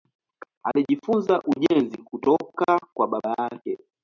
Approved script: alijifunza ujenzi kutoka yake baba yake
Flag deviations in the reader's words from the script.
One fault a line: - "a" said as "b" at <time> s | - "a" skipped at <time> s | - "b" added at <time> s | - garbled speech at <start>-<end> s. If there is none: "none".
- "yake" said as "kwa" at 2.9 s